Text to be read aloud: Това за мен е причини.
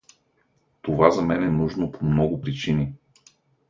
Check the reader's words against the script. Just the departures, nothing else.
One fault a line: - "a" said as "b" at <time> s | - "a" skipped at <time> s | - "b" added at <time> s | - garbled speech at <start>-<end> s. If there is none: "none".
- "нужно по много" added at 1.5 s